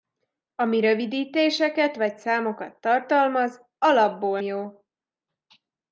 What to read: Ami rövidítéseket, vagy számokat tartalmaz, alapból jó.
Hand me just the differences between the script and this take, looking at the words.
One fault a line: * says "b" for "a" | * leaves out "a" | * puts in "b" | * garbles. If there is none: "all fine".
all fine